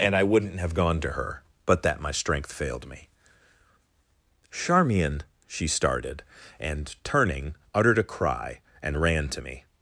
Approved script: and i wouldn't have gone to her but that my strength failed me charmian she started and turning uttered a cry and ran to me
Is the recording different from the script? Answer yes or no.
no